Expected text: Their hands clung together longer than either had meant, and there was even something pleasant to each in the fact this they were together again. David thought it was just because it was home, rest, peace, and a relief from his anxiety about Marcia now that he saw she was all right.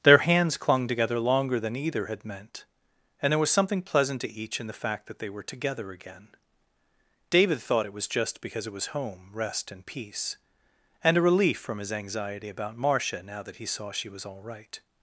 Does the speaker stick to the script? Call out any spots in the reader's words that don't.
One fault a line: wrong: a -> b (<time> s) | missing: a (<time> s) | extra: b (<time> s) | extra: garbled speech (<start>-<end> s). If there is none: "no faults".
missing: even (3.5 s)
wrong: this -> that (5.0 s)
extra: and (9.7 s)